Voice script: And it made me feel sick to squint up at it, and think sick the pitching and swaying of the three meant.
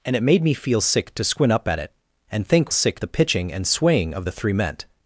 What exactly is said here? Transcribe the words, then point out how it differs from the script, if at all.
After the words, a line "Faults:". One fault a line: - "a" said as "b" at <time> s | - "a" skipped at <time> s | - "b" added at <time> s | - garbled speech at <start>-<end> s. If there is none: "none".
And it made me feel sick to squint up at it, and think sick the pitching and swaying of the three meant.
Faults:
none